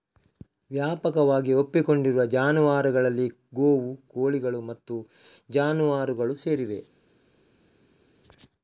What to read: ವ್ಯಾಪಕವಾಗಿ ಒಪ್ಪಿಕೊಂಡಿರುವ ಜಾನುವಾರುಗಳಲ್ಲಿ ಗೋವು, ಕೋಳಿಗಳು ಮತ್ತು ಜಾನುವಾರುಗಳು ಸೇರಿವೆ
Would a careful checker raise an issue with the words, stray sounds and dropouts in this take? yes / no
no